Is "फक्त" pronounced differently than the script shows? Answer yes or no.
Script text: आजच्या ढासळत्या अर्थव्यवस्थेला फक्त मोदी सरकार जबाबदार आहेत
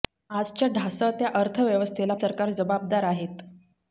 yes